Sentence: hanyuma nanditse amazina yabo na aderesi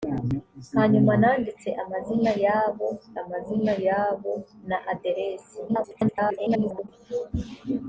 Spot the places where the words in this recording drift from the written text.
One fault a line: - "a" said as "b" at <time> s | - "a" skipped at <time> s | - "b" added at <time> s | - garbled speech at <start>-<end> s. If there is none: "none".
- "amazina yabo" added at 3.2 s
- garbled speech at 5.7-6.9 s